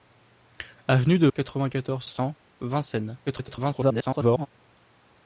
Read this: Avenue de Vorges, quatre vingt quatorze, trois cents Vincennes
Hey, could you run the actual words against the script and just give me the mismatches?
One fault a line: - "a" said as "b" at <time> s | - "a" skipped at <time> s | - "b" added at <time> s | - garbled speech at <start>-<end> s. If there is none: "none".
- "Vorges" skipped at 1.3 s
- "trois" skipped at 2.1 s
- garbled speech at 3.3-4.5 s